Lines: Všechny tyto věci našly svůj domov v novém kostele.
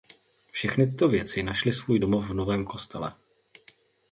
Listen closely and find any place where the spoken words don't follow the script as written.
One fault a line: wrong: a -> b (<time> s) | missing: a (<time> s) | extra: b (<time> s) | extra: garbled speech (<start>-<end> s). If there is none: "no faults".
no faults